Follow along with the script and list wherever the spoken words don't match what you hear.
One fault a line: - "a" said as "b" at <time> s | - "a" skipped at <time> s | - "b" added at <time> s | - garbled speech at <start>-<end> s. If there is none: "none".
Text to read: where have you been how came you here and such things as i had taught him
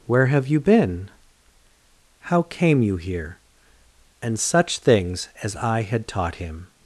none